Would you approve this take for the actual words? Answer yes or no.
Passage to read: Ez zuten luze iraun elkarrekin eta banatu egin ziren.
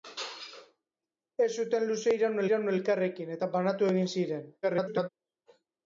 no